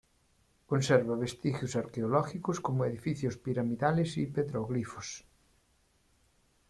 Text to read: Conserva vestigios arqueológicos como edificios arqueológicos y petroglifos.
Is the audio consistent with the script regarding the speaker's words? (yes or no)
no